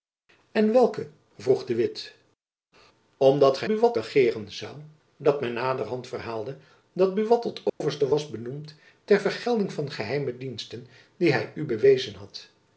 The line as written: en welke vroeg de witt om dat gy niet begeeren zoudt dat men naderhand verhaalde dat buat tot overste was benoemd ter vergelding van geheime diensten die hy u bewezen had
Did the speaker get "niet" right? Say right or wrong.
wrong